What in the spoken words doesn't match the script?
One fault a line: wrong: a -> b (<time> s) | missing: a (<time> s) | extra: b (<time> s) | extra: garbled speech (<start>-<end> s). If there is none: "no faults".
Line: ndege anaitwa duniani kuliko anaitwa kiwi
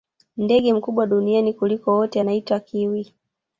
wrong: anaitwa -> mkubwa (0.7 s)
extra: wote (2.0 s)